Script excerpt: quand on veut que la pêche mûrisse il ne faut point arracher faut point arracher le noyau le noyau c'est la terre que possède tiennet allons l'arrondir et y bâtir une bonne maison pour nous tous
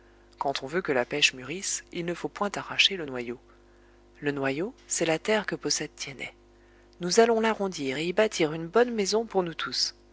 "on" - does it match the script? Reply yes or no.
yes